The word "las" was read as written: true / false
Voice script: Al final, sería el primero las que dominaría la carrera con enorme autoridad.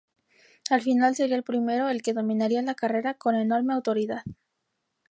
false